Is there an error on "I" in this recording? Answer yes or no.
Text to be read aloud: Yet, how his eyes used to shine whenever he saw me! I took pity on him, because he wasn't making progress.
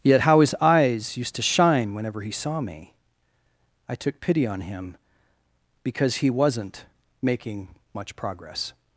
no